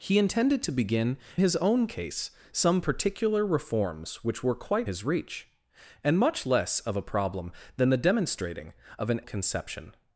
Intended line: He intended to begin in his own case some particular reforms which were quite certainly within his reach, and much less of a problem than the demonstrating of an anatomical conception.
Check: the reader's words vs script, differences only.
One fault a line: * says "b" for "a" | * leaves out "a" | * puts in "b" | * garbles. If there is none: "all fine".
* leaves out "in"
* leaves out "certainly within"
* leaves out "anatomical"